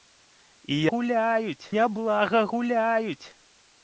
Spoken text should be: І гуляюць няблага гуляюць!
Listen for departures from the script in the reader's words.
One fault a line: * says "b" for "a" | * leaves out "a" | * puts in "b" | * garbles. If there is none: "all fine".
all fine